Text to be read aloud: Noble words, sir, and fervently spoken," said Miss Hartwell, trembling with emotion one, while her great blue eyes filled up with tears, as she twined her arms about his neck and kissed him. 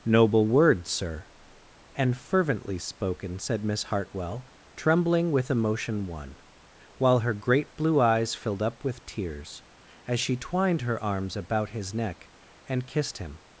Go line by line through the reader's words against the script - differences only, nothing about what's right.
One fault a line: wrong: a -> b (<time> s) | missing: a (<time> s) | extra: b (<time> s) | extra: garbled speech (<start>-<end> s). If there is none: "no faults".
no faults